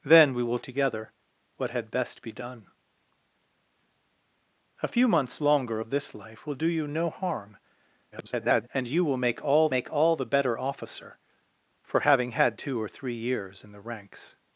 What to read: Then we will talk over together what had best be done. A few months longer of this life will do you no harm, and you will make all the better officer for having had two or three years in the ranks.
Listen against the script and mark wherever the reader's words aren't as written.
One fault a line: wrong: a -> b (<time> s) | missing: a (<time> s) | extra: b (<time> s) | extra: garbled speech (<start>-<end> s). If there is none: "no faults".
missing: talk over (0.6 s)
extra: garbled speech (8.1-8.7 s)
extra: make all (9.7 s)